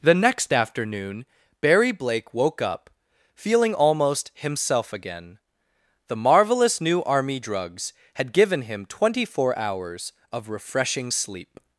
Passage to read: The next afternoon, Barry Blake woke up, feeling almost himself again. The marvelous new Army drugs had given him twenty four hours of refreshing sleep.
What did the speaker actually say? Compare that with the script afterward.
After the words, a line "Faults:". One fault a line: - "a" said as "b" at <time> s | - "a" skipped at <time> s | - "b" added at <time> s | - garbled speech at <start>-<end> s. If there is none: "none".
The next afternoon, Barry Blake woke up, feeling almost himself again. The marvelous new Army drugs had given him twenty four hours of refreshing sleep.
Faults:
none